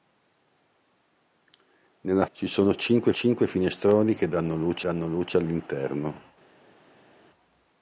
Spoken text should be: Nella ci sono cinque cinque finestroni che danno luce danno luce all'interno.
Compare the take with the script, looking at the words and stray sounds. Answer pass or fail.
pass